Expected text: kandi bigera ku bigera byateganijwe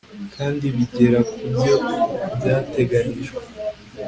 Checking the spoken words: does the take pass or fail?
fail